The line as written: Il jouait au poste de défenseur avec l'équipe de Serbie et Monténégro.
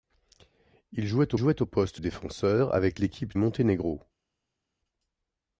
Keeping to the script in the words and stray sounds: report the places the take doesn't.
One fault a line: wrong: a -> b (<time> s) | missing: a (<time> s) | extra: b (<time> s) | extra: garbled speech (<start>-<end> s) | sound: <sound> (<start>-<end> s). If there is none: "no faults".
extra: jouait (1.3 s)
missing: de (2.0 s)
missing: de Serbie (3.4 s)